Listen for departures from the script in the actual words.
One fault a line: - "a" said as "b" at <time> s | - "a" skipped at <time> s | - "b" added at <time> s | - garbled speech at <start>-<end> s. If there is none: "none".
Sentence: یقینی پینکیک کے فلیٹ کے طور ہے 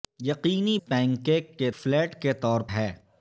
none